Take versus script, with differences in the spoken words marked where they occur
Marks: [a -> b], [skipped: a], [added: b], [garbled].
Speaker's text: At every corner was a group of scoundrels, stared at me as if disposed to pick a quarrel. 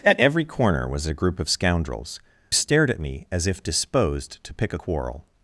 At every corner was a group of scoundrels, stared at me as if disposed to pick a quarrel.